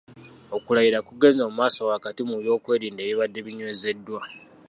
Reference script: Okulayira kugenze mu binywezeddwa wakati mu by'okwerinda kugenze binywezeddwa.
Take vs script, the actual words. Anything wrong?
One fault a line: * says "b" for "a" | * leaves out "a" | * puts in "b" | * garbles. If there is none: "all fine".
* says "maaso" for "binywezeddwa"
* says "ebibadde" for "kugenze"